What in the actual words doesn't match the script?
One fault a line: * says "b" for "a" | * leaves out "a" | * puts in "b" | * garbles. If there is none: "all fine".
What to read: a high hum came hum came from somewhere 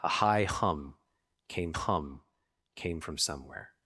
all fine